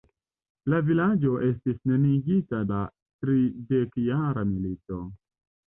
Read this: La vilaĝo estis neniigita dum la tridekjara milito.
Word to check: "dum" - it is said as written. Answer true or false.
false